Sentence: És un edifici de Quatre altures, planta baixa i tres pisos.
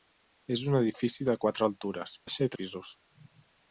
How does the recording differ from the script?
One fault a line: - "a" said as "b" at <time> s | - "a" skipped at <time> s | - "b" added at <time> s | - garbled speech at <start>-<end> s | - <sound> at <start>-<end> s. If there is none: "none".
- "planta" skipped at 2.2 s
- "tres" skipped at 2.6 s